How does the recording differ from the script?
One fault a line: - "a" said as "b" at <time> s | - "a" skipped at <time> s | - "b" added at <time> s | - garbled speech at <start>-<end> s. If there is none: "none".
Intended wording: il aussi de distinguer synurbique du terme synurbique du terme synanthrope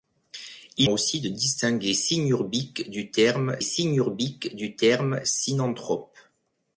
none